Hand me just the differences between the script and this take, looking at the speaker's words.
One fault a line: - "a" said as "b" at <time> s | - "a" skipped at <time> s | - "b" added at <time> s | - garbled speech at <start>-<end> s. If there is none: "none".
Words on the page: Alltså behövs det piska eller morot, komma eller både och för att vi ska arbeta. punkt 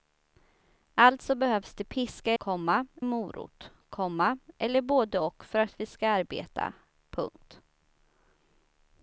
- "eller" said as "komma" at 2.4 s